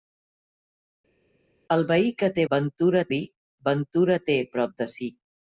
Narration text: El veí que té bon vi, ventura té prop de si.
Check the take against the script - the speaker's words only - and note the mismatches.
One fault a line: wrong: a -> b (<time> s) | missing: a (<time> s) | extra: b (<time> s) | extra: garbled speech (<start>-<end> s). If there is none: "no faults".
wrong: bon -> ventura (2.5 s)